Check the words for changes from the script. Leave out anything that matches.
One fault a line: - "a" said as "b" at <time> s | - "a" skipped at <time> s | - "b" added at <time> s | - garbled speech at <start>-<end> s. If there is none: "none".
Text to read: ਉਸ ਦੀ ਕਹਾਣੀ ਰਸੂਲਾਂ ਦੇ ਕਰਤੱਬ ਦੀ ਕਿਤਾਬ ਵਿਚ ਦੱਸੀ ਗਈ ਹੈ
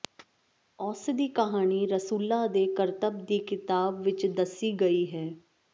none